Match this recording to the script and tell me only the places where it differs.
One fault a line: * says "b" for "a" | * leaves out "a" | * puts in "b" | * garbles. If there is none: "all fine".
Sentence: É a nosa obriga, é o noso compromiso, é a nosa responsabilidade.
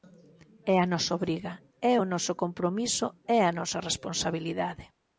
all fine